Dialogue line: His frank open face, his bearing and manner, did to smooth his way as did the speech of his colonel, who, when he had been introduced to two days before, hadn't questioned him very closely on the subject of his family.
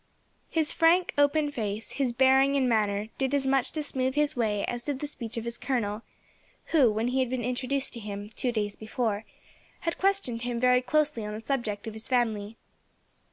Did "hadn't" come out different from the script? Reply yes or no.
yes